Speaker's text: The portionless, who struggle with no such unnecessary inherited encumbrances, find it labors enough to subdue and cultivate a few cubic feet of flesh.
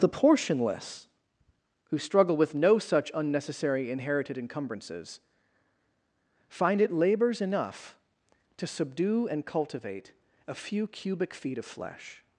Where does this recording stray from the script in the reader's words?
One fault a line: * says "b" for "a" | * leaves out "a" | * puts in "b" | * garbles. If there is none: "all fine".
all fine